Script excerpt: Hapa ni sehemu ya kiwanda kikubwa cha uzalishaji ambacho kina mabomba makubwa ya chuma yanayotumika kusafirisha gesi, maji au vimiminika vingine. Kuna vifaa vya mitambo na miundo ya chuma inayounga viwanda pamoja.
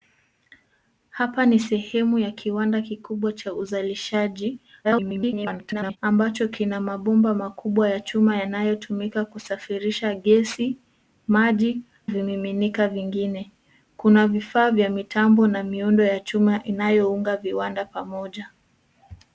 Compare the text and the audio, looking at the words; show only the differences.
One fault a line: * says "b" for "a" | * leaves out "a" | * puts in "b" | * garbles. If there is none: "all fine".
* garbles
* leaves out "au"